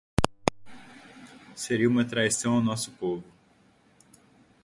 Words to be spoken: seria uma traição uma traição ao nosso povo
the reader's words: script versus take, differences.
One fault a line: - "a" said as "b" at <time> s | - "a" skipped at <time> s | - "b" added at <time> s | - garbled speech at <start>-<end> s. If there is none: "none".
- "uma traição" skipped at 2.5 s